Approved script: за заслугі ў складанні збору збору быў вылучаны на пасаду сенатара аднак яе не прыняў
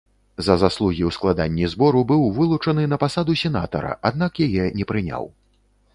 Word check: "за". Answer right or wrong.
right